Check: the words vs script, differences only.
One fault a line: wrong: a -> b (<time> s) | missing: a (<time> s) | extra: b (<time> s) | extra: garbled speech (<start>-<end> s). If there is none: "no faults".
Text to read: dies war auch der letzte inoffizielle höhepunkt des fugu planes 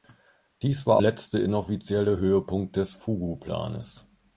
missing: auch der (1.0 s)